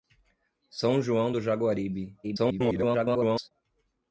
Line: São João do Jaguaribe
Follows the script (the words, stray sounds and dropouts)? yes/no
no